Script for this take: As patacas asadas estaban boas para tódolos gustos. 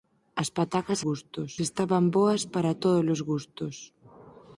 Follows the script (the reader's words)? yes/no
no